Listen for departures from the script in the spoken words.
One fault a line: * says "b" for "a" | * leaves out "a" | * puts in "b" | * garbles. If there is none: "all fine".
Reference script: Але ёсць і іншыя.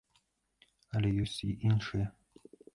all fine